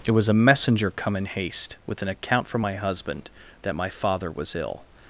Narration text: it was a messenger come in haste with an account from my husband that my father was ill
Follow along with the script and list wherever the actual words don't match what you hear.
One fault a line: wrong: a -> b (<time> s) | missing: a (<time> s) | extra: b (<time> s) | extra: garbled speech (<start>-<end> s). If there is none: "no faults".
no faults